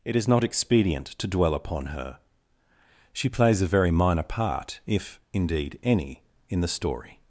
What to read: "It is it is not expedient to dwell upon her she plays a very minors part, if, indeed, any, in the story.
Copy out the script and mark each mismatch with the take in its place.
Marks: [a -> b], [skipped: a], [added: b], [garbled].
"It is [skipped: it is] not expedient to dwell upon her she plays a very [minors -> minor] part, if, indeed, any, in the story.